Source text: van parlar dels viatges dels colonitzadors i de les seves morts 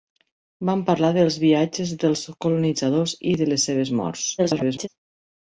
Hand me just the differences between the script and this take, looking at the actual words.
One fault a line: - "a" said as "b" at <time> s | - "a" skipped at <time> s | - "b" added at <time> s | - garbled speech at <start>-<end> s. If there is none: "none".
- garbled speech at 4.4-4.9 s